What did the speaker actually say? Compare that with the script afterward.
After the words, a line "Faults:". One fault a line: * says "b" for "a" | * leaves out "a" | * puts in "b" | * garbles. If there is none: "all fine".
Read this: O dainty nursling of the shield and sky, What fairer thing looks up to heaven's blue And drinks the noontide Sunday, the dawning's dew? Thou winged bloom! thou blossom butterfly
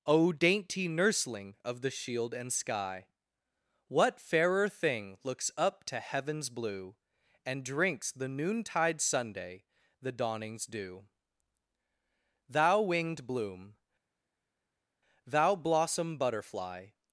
O dainty nursling of the shield and sky, What fairer thing looks up to heaven's blue And drinks the noontide Sunday, the dawning's dew? Thou winged bloom! thou blossom butterfly
Faults:
all fine